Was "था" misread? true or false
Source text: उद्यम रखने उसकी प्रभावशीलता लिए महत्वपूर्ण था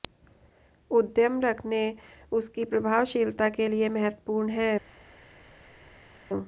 true